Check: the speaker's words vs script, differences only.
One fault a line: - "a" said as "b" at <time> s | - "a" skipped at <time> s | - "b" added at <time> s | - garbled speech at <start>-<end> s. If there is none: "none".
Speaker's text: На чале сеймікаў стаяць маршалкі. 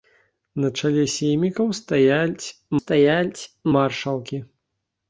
- "стаяць" added at 2.8 s